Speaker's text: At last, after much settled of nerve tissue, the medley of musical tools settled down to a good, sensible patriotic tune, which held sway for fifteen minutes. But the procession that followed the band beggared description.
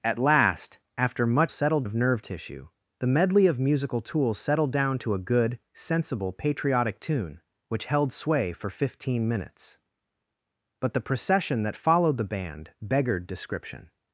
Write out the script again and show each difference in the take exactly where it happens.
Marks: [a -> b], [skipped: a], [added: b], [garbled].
At last, after much settled of nerve tissue, the medley of musical tools settled down to a good, sensible patriotic tune, which held sway for fifteen minutes. But the procession that followed the band beggared description.